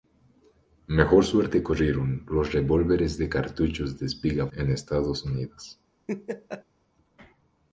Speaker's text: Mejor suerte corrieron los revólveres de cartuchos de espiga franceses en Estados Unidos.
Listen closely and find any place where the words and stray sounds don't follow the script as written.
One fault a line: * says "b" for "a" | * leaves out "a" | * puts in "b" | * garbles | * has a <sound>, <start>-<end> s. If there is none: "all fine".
* leaves out "franceses"
* has a laugh, 6.1-6.6 s